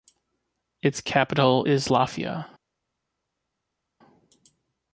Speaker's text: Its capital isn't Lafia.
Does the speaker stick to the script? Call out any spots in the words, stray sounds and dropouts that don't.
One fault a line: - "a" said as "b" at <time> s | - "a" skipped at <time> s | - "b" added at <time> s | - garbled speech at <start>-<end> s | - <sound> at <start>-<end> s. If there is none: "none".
- "isn't" said as "is" at 1.6 s